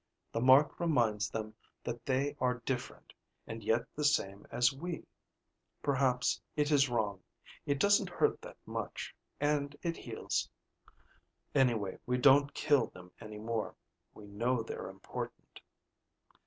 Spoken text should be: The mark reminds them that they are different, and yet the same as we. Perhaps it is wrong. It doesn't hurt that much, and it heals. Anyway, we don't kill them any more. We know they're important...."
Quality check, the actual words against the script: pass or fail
pass